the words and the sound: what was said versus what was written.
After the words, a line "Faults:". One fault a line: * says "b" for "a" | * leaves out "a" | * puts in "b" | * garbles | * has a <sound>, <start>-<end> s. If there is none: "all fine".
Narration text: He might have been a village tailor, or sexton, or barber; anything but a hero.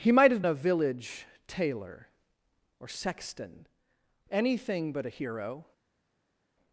He might have a village tailor, or sexton; anything but a hero.
Faults:
* leaves out "been"
* leaves out "or barber"